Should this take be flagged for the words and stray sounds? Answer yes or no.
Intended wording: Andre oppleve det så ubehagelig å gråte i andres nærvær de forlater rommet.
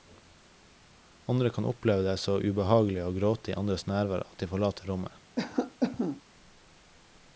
yes